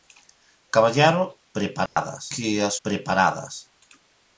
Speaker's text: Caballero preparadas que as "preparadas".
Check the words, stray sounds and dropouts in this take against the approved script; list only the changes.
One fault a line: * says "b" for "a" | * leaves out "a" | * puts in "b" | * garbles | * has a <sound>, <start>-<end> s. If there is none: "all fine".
* has a dropout, 1.9-2.0 s